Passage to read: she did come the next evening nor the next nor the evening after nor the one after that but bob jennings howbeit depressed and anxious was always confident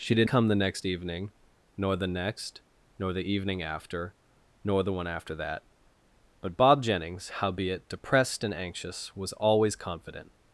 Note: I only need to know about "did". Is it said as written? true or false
true